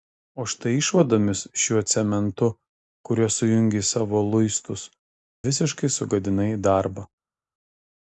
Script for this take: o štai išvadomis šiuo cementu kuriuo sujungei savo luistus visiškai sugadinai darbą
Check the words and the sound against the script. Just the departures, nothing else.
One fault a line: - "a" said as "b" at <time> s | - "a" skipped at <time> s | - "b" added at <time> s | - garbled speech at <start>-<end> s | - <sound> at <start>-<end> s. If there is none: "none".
none